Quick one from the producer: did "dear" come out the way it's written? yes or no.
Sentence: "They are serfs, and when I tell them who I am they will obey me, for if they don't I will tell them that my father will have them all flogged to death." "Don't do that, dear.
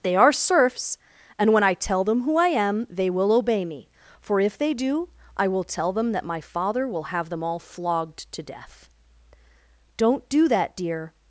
yes